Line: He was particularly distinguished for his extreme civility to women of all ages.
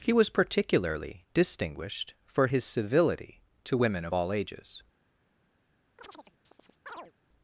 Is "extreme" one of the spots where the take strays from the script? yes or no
yes